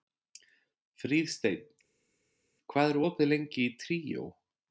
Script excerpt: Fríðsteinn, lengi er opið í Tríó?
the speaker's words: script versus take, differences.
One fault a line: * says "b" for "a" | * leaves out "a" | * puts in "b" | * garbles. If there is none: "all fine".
* says "hvað" for "lengi"
* puts in "lengi"